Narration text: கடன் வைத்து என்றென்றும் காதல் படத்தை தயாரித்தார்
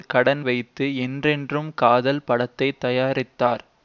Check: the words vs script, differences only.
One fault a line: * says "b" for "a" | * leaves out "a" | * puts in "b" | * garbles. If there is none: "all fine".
all fine